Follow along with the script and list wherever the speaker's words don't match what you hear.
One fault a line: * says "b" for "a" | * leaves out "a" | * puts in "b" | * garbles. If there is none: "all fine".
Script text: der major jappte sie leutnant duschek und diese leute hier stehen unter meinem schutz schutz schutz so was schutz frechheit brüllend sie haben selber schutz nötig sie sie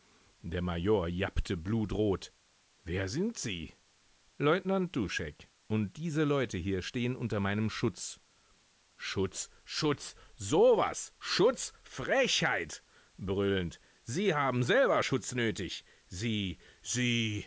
* puts in "blutrot wer sind"